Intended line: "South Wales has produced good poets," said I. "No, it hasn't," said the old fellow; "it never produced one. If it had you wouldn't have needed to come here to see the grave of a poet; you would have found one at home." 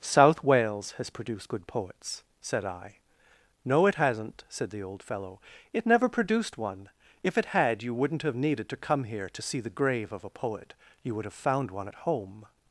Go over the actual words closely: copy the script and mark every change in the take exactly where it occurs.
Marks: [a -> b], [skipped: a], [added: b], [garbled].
"South Wales has produced good poets," said I. "No, it hasn't," said the old fellow; "it never produced one. If it had you wouldn't have needed to come here to see the grave of a poet; you would have found one at home."